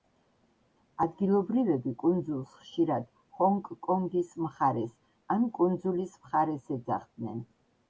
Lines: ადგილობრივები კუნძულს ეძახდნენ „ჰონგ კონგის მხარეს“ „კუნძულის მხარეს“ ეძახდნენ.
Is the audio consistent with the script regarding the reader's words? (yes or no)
no